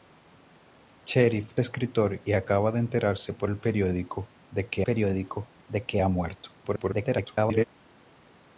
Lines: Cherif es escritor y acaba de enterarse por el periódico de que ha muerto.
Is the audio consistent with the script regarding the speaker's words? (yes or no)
no